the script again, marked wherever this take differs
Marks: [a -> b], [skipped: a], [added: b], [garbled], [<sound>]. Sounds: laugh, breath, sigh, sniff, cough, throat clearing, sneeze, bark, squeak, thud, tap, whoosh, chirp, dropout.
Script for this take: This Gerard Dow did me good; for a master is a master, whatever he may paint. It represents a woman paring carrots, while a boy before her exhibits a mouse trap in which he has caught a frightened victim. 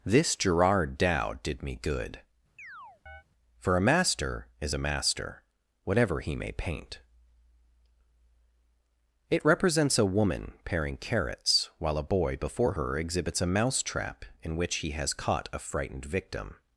This Gerard Dow did me good; [chirp] for a master is a master, whatever he may paint. It represents a woman paring carrots, while a boy before her exhibits a mouse trap in which he has caught a frightened victim.